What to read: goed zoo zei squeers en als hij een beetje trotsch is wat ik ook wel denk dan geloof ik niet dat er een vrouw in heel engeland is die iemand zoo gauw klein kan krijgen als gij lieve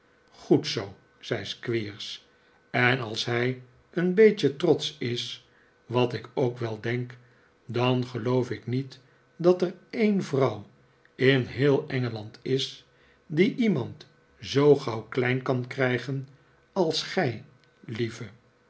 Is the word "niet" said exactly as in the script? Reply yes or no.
yes